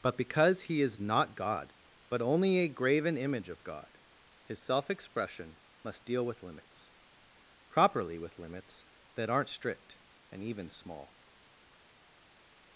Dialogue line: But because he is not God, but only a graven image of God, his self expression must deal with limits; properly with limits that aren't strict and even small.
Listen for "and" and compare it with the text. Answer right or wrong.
right